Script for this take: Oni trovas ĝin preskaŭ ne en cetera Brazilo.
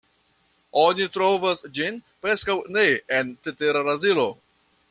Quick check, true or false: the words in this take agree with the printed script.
true